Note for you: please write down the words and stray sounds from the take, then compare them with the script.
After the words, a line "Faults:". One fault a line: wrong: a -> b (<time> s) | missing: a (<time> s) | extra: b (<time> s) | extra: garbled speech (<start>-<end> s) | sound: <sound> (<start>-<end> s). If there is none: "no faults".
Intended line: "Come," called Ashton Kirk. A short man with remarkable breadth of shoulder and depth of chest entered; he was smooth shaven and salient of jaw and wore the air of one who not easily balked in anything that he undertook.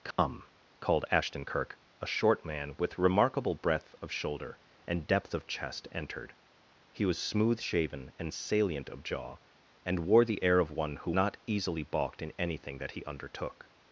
"Come," called Ashton Kirk. A short man with remarkable breadth of shoulder and depth of chest entered; he was smooth shaven and salient of jaw and wore the air of one who not easily balked in anything that he undertook.
Faults:
sound: dropout (0.1-0.2 s)